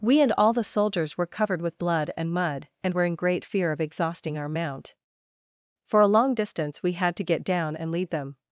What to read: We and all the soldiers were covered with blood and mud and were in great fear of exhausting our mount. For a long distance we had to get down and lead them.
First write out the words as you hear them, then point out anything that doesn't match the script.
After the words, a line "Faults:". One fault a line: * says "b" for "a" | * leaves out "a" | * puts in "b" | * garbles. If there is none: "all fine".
We and all the soldiers were covered with blood and mud and were in great fear of exhausting our mount. For a long distance we had to get down and lead them.
Faults:
all fine